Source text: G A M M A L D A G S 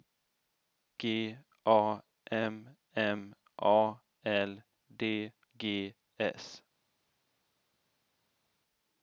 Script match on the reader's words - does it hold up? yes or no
no